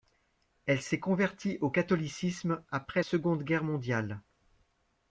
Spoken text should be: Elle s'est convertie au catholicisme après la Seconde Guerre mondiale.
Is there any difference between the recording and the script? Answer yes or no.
yes